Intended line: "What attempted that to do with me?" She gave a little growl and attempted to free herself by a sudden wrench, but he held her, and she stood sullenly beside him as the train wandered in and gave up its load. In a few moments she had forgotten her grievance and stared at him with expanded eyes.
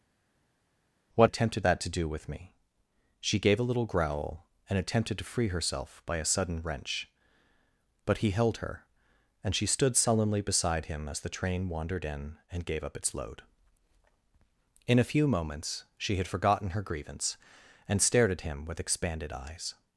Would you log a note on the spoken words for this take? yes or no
no